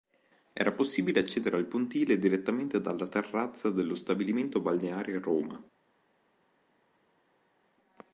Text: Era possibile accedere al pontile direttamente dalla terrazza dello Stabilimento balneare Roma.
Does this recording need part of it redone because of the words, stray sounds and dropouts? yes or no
no